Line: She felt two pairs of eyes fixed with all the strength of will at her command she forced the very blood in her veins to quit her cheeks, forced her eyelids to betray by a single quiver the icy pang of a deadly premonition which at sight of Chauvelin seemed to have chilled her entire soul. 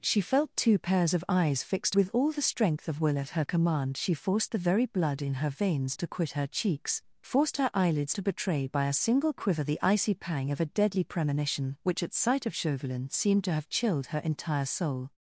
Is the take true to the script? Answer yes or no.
yes